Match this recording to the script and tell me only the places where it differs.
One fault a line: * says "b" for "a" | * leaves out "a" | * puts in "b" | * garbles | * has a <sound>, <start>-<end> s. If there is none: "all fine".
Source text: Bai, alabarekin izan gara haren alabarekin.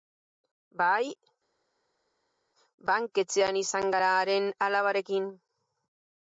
* says "banketxean" for "alabarekin"